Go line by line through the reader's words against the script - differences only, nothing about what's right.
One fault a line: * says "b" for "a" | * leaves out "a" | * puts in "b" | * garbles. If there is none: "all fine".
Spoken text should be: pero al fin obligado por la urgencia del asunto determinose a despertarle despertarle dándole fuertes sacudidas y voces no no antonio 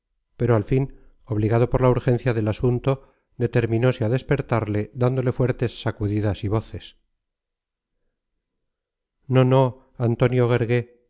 * leaves out "despertarle"